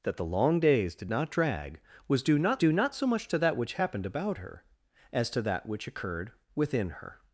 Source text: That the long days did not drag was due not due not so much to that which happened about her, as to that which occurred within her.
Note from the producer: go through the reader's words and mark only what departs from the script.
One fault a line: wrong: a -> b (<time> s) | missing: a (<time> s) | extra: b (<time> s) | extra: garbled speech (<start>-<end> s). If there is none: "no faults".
no faults